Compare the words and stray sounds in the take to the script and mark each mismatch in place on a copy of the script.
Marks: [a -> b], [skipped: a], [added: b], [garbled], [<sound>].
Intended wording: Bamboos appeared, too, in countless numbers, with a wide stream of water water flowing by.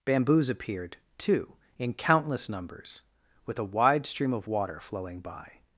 Bamboos appeared, too, in countless numbers, with a wide stream of water [skipped: water] flowing by.